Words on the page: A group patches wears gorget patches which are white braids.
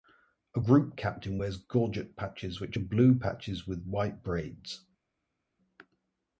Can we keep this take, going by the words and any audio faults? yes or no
no